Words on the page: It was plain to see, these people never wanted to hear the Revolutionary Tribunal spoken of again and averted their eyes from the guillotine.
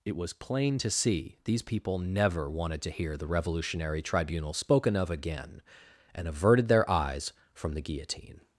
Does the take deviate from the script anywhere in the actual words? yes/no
no